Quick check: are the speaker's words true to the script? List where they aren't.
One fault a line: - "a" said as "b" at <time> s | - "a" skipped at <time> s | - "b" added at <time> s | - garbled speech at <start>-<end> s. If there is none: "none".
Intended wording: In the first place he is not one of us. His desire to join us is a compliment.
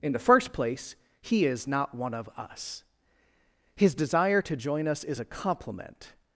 none